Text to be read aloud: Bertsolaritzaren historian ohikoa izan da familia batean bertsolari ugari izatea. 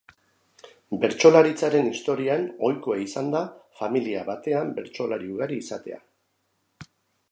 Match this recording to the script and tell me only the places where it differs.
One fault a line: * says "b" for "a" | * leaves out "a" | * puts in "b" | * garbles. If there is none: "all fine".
all fine